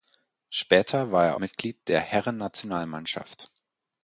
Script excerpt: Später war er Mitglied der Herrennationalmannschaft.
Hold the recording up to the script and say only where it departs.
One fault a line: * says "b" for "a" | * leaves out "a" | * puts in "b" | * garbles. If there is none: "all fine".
all fine